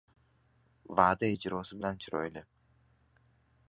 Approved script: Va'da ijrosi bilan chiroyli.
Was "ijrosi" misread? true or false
false